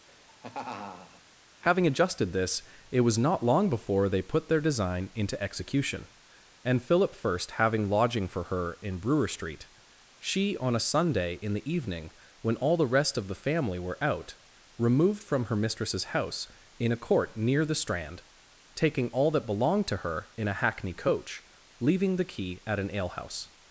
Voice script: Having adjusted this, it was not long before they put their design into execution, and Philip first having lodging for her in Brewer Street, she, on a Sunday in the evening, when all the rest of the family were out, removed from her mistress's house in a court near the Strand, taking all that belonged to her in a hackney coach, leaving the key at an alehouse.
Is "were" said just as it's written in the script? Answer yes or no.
yes